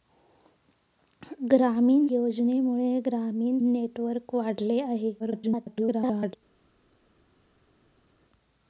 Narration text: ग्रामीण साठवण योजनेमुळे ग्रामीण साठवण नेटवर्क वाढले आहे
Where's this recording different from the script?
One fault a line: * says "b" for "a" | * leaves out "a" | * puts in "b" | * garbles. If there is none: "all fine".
* leaves out "साठवण"
* leaves out "साठवण"
* garbles